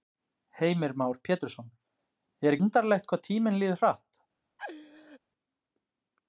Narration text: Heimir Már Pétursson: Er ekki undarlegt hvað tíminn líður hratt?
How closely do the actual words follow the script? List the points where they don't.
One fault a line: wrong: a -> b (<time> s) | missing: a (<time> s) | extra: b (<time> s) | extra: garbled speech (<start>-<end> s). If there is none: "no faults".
missing: ekki (2.6 s)